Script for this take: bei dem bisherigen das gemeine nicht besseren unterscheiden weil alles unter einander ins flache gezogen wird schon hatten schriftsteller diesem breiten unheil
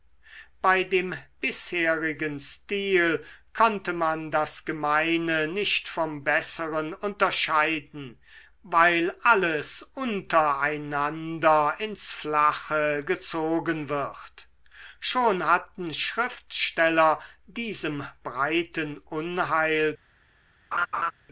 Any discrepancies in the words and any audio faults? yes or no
yes